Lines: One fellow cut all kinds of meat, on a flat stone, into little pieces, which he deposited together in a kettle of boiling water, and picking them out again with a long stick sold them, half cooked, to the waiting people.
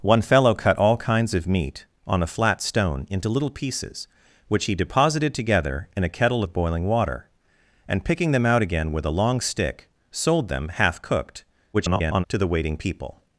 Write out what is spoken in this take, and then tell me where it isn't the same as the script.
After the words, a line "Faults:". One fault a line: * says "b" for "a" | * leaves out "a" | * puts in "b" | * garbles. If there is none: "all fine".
One fellow cut all kinds of meat, on a flat stone, into little pieces, which he deposited together in a kettle of boiling water, and picking them out again with a long stick sold them, half cooked, [garbled] to the waiting people.
Faults:
* garbles